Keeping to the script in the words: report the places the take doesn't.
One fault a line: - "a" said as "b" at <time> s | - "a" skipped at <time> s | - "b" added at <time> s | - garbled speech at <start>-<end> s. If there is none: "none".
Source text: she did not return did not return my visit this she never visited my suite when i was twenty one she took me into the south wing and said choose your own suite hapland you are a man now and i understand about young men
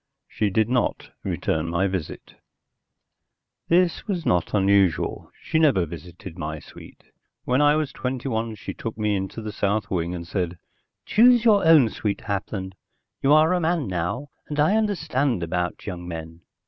- "did not return my visit this" said as "my visit this was not unusual" at 1.7 s